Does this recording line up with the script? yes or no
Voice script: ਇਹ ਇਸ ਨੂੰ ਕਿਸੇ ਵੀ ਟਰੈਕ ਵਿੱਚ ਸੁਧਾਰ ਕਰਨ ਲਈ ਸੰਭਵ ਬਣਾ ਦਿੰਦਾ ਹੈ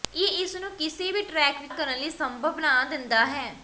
no